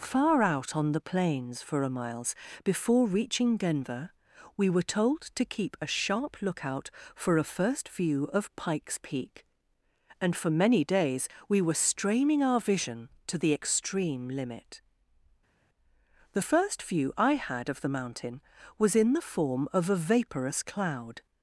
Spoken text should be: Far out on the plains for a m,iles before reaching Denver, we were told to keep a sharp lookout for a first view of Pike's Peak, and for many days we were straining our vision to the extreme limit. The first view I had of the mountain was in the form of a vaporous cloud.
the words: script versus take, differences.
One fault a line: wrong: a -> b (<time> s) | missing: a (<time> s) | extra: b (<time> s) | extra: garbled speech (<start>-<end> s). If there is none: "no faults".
no faults